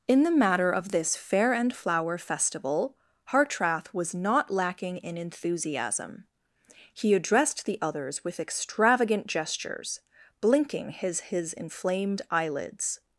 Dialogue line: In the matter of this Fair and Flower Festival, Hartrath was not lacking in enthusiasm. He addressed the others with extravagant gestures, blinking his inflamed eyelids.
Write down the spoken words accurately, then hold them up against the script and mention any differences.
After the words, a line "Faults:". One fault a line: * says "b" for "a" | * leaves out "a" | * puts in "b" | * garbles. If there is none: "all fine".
In the matter of this Fair and Flower Festival, Hartrath was not lacking in enthusiasm. He addressed the others with extravagant gestures, blinking his his inflamed eyelids.
Faults:
* puts in "his"